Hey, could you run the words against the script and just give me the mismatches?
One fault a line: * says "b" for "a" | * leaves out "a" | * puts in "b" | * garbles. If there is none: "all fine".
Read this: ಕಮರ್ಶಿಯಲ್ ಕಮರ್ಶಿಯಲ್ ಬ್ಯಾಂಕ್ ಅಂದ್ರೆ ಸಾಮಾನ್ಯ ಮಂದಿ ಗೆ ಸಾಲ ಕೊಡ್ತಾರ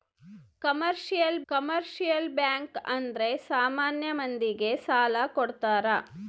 all fine